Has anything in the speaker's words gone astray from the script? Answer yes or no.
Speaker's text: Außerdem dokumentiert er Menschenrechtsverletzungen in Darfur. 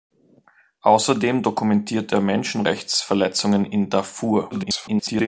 yes